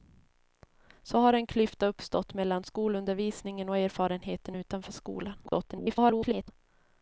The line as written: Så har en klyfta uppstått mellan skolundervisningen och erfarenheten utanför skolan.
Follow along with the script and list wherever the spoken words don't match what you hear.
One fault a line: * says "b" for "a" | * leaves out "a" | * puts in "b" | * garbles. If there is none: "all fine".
* garbles